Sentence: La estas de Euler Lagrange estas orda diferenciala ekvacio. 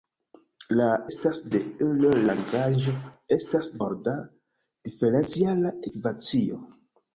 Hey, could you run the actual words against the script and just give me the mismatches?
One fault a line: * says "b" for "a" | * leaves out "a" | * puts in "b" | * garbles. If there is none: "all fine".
all fine